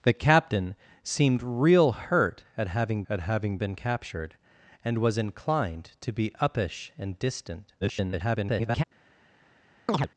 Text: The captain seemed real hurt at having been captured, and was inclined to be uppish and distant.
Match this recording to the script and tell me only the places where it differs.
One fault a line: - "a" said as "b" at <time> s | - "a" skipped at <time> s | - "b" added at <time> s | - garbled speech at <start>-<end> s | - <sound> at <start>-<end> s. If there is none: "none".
- "at having" added at 3.1 s
- garbled speech at 7.8-8.8 s
- chirp at 9.9-10.1 s